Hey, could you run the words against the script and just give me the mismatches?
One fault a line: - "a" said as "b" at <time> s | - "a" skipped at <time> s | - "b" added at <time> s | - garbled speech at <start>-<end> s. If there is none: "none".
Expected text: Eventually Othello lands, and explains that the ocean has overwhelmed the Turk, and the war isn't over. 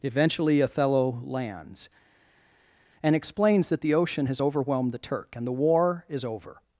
- "isn't" said as "is" at 6.1 s